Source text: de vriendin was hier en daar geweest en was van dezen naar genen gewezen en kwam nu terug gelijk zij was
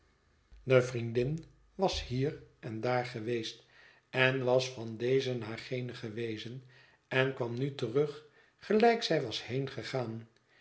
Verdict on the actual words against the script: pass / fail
pass